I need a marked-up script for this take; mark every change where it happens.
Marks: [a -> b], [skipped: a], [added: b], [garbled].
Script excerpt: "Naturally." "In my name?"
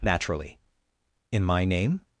"Naturally." "In my name?"